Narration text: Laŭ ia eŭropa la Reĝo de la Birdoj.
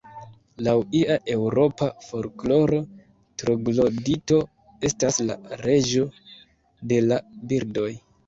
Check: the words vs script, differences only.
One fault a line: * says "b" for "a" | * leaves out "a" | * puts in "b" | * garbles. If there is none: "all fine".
* puts in "folkloro troglodito estas"